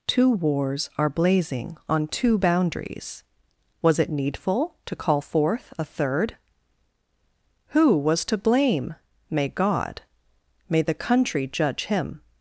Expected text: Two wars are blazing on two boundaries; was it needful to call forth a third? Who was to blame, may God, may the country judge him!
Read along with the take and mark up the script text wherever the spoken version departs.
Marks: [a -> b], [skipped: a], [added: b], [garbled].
Two wars are blazing on two boundaries; was it needful to call forth a third? Who was to blame, may God, may the country judge him!